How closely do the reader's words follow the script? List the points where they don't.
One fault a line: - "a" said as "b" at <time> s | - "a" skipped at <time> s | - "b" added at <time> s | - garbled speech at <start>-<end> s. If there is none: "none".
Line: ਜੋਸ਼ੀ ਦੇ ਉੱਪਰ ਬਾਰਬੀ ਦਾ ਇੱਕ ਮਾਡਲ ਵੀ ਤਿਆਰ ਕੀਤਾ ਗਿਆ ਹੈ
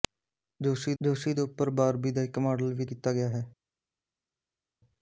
- "ਜੋਸ਼ੀ" added at 1.0 s
- "ਤਿਆਰ" skipped at 2.8 s